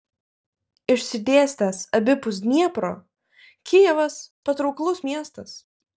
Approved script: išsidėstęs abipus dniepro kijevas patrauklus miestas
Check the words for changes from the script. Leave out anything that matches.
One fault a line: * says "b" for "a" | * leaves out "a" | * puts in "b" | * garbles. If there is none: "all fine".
all fine